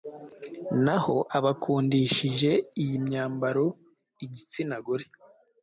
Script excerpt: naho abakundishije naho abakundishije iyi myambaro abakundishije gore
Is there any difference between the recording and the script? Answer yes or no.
yes